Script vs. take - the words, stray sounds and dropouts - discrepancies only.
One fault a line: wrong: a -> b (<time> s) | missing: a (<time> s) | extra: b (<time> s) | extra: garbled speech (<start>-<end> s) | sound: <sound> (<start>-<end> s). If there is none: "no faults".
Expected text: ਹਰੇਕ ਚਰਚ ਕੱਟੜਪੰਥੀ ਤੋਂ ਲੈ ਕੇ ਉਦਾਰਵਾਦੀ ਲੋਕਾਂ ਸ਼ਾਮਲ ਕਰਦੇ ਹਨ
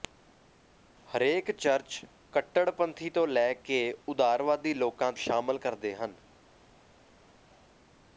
no faults